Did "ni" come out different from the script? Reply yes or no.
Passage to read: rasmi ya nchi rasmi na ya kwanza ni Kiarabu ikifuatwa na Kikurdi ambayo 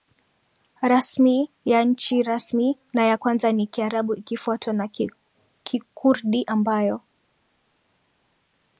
no